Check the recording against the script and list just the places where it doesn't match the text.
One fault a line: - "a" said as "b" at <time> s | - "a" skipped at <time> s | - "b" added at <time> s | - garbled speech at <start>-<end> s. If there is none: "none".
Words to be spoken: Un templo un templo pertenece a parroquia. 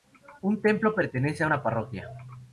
- "un templo" skipped at 0.9 s
- "una" added at 1.4 s